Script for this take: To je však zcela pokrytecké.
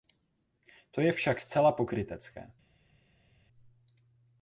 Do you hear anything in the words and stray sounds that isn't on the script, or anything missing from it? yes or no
no